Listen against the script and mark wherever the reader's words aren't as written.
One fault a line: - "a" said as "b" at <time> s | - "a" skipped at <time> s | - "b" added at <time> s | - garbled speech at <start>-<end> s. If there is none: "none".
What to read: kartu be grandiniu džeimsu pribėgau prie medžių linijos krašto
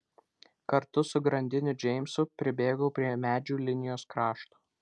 - "be" said as "su" at 1.1 s